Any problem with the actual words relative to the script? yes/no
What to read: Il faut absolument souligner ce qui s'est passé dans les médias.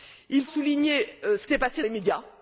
yes